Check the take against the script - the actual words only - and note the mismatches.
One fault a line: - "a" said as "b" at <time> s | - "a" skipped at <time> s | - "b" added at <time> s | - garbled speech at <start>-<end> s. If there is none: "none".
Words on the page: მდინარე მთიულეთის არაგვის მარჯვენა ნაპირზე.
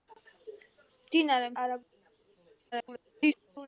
- "მთიულეთის" skipped at 1.5 s
- garbled speech at 2.7-3.7 s